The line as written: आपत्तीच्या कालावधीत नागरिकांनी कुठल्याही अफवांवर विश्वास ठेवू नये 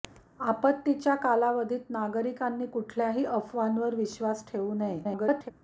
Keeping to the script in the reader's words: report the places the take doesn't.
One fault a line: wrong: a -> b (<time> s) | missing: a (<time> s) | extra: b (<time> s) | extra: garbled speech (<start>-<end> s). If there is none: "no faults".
extra: garbled speech (5.0-5.5 s)